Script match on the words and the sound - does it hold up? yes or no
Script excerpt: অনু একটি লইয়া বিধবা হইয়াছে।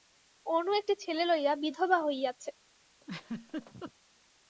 no